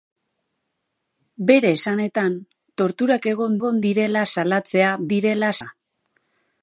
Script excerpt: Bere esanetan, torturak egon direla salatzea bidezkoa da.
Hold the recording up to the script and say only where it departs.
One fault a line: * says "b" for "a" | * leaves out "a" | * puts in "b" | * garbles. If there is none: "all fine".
* puts in "egon"
* says "direla" for "bidezkoa"